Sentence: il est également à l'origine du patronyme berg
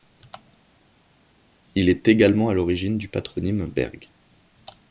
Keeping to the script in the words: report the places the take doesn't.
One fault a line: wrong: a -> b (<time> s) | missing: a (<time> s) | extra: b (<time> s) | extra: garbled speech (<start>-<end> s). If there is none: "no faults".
no faults